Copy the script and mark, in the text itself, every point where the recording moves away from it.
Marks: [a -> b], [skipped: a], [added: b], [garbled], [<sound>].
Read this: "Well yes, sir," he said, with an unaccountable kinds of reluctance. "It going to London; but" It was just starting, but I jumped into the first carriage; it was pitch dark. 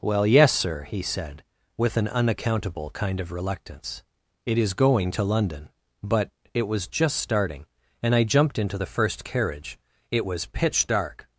"Well yes, sir," he said, with an unaccountable [kinds -> kind] of reluctance. "It [added: is] going to London; but" It was just starting, [but -> and] I jumped into the first carriage; it was pitch dark.